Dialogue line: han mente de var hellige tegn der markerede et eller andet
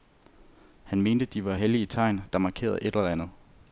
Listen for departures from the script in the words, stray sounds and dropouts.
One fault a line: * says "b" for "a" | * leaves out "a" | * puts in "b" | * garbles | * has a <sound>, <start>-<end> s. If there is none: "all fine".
all fine